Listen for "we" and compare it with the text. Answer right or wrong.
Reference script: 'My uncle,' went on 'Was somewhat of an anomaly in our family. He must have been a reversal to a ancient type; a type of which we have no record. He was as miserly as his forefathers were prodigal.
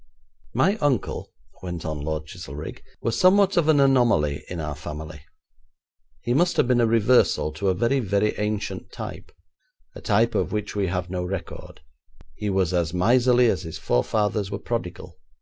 right